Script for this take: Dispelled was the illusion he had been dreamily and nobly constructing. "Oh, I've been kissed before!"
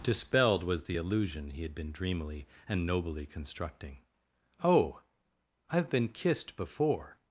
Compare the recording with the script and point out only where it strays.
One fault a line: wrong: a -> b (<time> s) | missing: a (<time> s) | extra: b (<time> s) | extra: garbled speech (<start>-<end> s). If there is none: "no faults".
no faults